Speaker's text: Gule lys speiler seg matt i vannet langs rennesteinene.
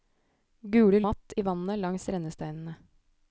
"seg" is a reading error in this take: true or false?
true